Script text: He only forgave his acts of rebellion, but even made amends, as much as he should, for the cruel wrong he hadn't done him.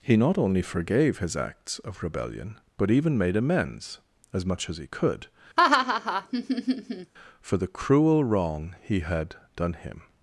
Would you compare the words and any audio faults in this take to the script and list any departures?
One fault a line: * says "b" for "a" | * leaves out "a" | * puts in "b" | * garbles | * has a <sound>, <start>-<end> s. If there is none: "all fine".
* puts in "not"
* says "could" for "should"
* has a laugh, 5.6-7.1 s
* says "had" for "hadn't"